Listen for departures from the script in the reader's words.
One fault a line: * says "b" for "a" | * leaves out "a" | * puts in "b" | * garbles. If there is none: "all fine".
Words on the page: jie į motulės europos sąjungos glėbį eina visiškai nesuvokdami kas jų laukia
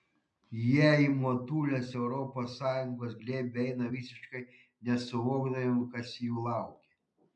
all fine